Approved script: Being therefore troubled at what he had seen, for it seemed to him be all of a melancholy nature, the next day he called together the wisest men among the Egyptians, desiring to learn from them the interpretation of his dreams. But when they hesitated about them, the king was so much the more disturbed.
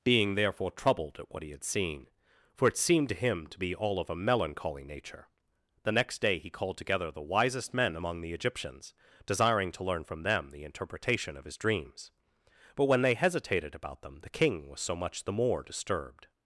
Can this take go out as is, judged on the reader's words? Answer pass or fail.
fail